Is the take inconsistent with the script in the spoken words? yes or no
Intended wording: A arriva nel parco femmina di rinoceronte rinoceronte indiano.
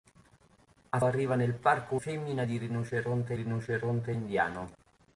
no